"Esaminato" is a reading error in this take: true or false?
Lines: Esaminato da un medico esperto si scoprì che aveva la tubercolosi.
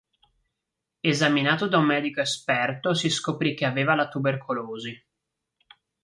false